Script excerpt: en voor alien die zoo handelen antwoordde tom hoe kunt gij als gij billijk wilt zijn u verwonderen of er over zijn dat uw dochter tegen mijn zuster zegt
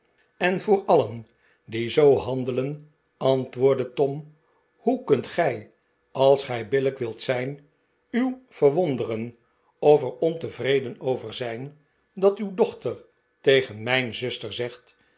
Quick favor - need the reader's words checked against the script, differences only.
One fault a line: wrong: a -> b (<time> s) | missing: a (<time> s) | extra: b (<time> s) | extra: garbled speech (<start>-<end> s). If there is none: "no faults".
extra: ontevreden (10.2 s)